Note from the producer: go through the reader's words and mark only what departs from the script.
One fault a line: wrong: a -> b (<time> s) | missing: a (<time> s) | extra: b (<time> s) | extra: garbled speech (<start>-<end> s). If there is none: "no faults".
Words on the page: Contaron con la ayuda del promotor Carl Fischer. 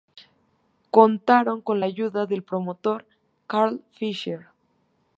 no faults